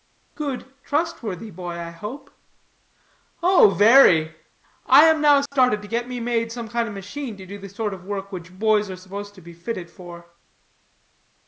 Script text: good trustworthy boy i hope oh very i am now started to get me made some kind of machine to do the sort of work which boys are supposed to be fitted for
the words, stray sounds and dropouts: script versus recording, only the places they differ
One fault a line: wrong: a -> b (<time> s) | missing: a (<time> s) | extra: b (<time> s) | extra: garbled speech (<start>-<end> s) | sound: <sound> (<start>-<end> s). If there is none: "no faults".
sound: dropout (5.5-5.5 s)